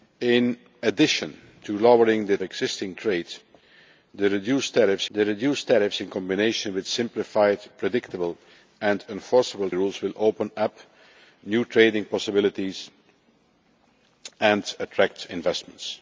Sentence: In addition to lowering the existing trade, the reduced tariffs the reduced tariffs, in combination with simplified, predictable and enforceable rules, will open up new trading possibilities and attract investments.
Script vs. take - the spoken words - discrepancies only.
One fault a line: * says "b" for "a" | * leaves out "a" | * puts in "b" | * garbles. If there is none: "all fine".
all fine